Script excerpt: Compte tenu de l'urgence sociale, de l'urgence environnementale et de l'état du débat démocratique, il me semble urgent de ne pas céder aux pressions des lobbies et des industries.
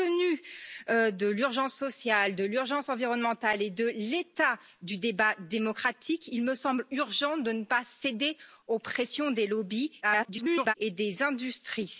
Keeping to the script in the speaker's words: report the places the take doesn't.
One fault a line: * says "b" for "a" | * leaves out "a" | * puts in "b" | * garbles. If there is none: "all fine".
* garbles